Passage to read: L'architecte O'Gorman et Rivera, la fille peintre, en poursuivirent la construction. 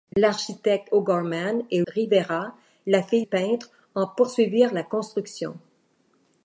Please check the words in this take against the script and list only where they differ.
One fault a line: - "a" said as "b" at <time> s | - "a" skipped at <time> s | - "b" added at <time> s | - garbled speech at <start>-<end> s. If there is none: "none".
none